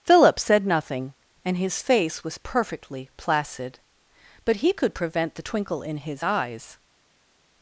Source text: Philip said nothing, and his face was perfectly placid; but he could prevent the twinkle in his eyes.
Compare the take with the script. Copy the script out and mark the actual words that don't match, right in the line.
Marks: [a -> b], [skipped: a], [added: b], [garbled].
Philip said nothing, and his face was perfectly placid; but he could prevent the twinkle in his eyes.